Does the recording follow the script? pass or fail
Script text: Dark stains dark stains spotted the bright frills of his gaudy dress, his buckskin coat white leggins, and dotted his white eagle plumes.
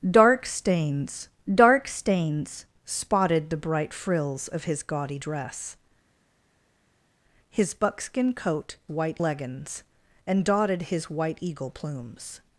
pass